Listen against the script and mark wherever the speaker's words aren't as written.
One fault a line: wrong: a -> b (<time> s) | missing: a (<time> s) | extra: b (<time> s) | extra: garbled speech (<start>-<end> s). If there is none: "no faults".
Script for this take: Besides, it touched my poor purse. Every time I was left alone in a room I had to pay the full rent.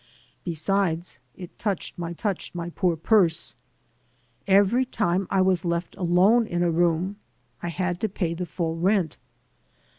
extra: touched my (2.2 s)